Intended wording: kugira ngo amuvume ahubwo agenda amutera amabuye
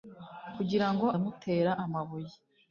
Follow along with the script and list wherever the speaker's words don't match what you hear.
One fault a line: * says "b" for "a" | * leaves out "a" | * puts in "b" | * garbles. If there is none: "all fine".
* leaves out "amuvume ahubwo agenda"